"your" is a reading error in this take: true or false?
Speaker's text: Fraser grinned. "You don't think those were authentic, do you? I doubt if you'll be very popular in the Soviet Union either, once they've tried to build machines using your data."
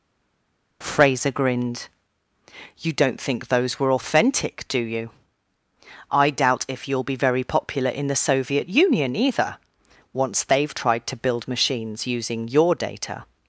false